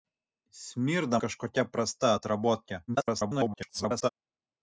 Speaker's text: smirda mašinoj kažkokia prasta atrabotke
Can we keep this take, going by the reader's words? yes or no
no